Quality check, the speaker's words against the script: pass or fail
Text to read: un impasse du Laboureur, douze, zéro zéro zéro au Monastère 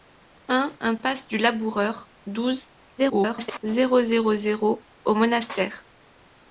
fail